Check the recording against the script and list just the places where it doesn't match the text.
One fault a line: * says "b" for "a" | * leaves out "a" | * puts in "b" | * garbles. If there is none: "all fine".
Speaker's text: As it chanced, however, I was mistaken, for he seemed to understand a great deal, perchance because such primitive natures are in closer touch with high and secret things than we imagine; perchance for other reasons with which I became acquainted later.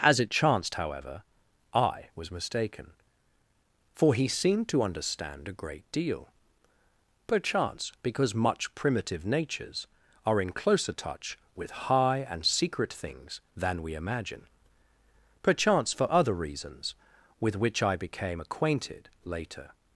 * says "much" for "such"